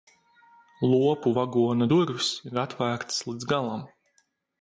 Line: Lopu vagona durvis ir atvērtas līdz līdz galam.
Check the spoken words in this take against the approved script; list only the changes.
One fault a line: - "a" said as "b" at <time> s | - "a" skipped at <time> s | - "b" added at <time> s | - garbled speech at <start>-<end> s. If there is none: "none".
- "līdz" skipped at 3.5 s